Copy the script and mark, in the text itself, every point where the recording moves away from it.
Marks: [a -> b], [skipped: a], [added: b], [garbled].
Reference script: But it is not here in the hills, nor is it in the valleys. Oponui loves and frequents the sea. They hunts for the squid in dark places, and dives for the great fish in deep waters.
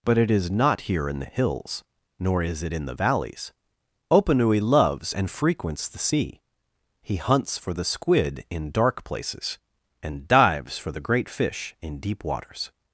But it is not here in the hills, nor is it in the valleys. Oponui loves and frequents the sea. [They -> He] hunts for the squid in dark places, and dives for the great fish in deep waters.